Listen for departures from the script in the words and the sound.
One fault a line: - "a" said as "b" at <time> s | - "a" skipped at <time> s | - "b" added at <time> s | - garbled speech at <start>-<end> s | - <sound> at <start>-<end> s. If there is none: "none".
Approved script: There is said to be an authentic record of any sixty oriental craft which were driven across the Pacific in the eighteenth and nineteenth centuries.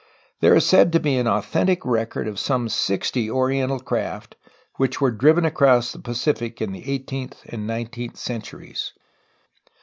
- "any" said as "some" at 2.4 s